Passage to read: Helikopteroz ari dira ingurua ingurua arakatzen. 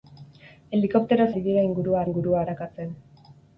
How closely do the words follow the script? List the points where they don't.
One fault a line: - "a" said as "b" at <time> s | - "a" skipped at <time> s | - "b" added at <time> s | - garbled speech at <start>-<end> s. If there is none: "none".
none